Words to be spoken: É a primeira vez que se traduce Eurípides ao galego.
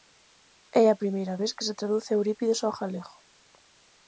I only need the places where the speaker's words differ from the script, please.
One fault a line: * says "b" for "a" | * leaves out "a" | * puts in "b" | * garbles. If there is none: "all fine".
all fine